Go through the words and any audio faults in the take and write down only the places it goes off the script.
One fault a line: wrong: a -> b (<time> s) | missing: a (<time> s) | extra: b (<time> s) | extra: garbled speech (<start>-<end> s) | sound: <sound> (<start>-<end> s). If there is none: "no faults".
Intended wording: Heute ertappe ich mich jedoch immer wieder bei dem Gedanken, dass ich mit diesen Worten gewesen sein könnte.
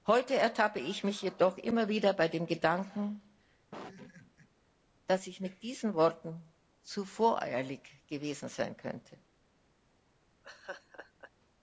sound: laugh (3.7-4.5 s)
extra: zu voreilig (6.8 s)
sound: laugh (10.4-11.3 s)